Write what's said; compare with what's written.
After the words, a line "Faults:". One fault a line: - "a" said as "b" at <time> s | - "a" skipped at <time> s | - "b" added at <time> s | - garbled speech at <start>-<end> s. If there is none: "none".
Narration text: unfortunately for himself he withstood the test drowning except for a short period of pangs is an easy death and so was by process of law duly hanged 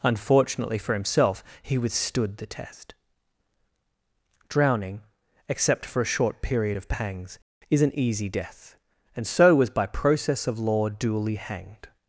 unfortunately for himself he withstood the test drowning except for a short period of pangs is an easy death and so was by process of law duly hanged
Faults:
none